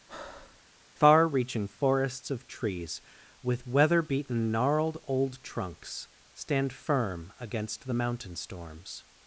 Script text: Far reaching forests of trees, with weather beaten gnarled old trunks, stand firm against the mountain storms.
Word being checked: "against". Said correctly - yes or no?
yes